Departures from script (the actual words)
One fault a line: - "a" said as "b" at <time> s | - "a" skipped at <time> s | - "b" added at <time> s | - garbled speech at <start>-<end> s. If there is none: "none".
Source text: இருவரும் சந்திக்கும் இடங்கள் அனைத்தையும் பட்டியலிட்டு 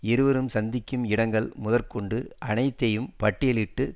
- "முதற்கொண்டு" added at 1.6 s